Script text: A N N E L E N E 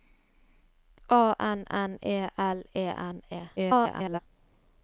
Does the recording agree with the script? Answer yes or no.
no